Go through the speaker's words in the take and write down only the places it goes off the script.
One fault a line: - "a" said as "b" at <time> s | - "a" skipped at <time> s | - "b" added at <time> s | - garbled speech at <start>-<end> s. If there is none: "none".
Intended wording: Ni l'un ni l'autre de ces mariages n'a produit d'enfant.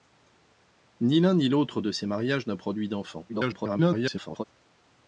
- garbled speech at 3.3-4.4 s